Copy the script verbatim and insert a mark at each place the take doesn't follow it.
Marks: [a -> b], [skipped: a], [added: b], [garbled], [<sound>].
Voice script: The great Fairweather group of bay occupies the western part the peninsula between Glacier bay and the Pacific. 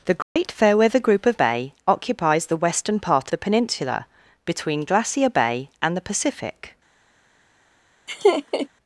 The great [dropout] Fairweather group of bay occupies the western part the peninsula between Glacier bay and the Pacific. [laugh]